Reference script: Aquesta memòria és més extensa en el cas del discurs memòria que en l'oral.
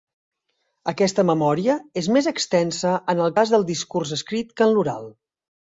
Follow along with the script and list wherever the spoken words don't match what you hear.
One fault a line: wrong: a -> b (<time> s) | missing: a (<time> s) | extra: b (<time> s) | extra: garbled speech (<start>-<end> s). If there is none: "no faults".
wrong: memòria -> escrit (4.2 s)